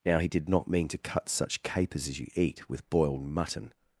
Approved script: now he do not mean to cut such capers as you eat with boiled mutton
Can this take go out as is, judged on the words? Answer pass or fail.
fail